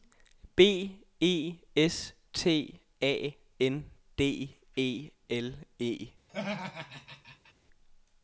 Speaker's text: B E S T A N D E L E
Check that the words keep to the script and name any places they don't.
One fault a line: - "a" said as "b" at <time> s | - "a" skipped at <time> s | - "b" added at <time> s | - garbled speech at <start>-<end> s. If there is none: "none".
none